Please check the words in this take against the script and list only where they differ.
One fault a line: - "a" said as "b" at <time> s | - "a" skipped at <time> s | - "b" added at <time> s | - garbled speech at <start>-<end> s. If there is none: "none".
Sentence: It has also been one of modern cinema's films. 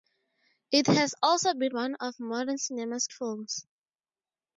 none